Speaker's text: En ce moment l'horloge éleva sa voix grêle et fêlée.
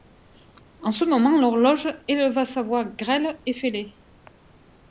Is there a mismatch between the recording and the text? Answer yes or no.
no